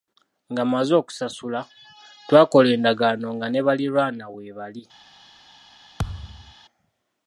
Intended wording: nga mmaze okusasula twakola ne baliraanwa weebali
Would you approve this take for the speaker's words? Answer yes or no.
no